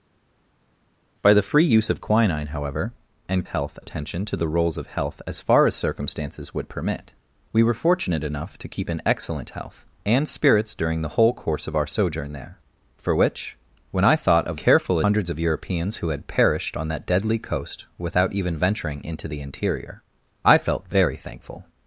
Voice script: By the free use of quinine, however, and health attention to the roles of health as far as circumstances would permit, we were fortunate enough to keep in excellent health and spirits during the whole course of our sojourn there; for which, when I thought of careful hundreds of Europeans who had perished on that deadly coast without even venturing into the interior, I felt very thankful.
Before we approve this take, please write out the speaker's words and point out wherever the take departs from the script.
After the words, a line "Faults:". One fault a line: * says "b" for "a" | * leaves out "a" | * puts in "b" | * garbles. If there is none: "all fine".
By the free use of quinine, however, and health attention to the roles of health as far as circumstances would permit, we were fortunate enough to keep in excellent health and spirits during the whole course of our sojourn there; for which, when I thought of careful hundreds of Europeans who had perished on that deadly coast without even venturing into the interior, I felt very thankful.
Faults:
all fine